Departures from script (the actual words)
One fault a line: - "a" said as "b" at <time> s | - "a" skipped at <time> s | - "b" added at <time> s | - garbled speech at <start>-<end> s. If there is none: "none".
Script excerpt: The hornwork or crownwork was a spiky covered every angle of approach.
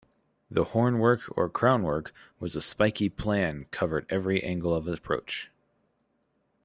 - "plan" added at 3.1 s